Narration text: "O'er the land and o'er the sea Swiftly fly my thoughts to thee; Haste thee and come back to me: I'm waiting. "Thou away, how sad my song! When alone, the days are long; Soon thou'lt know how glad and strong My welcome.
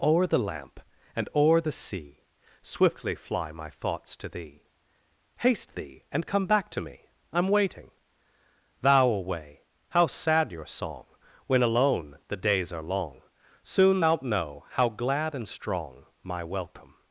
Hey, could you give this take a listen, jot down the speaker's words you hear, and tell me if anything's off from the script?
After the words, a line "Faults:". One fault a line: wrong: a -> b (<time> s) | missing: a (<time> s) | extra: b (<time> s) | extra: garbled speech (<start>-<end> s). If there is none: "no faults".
"O'er the lamp and o'er the sea Swiftly fly my thoughts to thee; Haste thee and come back to me: I'm waiting. "Thou away, how sad your song! When alone, the days are long; Soon thou'lt know how glad and strong My welcome.
Faults:
wrong: land -> lamp (0.4 s)
wrong: my -> your (10.5 s)